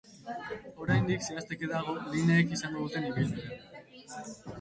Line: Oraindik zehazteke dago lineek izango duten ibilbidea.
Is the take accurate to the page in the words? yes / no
yes